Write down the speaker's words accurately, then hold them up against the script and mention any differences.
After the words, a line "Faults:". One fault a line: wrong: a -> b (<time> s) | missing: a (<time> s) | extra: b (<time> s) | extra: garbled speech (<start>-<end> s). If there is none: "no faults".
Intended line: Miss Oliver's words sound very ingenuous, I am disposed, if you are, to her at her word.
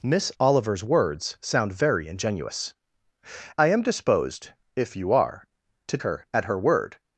Miss Oliver's words sound very ingenuous, I am disposed, if you are, to her at her word.
Faults:
no faults